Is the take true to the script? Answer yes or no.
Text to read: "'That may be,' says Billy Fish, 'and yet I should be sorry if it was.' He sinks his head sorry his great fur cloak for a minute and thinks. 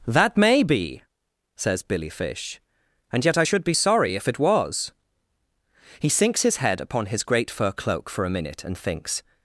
no